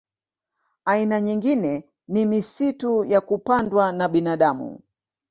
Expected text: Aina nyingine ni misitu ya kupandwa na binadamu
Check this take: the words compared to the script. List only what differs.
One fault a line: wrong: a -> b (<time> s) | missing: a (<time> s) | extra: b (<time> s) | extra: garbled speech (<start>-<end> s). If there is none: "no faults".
no faults